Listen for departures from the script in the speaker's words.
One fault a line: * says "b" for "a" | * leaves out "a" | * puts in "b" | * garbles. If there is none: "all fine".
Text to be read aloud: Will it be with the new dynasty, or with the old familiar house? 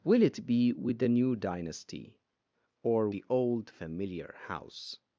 * leaves out "with"